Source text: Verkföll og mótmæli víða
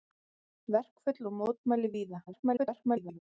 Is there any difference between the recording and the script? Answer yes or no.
yes